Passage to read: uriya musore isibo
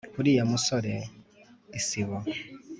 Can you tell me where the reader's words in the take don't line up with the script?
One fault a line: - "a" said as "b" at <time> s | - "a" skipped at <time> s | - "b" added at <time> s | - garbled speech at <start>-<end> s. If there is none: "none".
none